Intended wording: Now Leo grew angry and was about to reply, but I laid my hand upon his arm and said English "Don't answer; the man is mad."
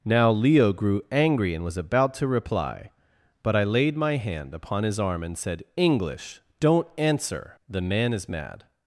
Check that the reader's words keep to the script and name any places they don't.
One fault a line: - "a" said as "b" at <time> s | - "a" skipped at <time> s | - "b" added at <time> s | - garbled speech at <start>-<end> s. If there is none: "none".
none